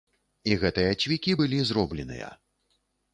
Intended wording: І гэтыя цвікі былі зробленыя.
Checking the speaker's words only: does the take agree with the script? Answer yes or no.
yes